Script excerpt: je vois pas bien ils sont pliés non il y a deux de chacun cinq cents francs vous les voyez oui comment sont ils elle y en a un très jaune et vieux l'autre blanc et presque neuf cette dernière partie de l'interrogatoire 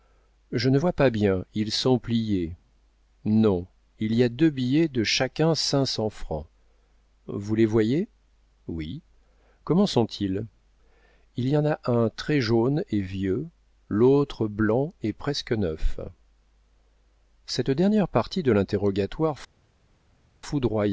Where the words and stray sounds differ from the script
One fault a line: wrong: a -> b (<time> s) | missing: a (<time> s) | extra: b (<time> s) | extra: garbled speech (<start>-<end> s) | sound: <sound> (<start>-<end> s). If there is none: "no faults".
extra: ne (0.7 s)
extra: billets (4.5 s)
wrong: elle -> il (11.3 s)